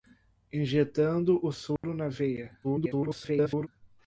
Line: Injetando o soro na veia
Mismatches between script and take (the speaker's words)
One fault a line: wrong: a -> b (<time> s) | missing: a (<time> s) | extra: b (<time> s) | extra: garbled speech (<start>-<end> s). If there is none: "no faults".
extra: garbled speech (2.6-3.7 s)